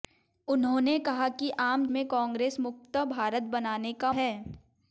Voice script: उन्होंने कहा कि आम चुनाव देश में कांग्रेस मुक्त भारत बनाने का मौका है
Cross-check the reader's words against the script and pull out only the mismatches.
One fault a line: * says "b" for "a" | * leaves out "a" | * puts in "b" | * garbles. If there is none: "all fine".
* leaves out "चुनाव देश"
* leaves out "मौका"